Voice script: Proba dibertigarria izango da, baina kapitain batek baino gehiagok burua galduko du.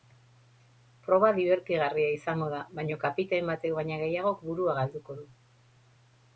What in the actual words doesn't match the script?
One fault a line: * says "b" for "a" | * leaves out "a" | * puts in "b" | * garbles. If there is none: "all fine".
all fine